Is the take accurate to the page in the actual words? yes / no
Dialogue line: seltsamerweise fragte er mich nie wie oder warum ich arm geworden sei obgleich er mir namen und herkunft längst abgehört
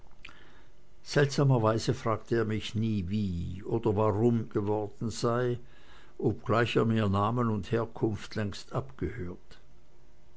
no